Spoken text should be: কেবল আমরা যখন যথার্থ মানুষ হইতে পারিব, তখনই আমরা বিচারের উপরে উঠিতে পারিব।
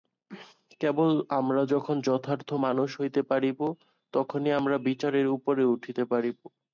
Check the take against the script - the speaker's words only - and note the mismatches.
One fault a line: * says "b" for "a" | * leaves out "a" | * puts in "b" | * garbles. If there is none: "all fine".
all fine